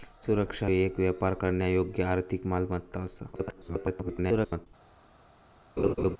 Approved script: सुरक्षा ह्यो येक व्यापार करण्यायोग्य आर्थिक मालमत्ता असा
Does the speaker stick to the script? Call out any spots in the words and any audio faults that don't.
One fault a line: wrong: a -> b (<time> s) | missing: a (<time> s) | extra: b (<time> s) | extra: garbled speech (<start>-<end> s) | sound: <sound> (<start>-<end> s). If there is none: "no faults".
missing: ह्यो (0.7 s)
extra: garbled speech (3.3-4.7 s)
sound: laugh (5.8-6.2 s)